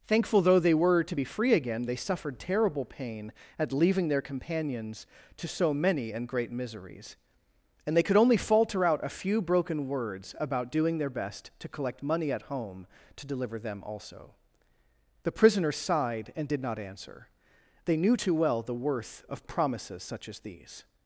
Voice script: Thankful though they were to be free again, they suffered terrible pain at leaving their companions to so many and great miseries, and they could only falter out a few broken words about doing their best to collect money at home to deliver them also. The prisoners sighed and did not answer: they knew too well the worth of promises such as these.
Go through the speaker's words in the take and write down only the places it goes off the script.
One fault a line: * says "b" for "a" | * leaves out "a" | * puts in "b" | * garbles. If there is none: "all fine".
all fine